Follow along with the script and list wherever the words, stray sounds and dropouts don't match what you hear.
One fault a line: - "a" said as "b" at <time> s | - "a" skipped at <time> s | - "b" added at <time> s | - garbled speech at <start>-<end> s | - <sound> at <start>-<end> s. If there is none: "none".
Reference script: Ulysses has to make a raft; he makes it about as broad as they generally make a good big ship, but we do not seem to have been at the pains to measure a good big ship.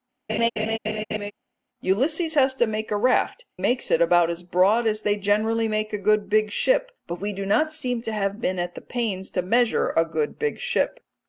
- laugh at 0.3-1.3 s
- "he" skipped at 3.4 s